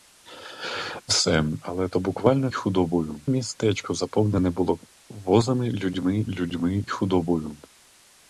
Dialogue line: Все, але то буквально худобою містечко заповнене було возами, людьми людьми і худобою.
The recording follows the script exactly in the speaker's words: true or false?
true